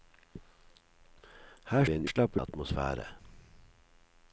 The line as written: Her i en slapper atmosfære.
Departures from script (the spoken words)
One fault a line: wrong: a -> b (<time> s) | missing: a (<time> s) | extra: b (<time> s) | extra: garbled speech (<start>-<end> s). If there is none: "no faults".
no faults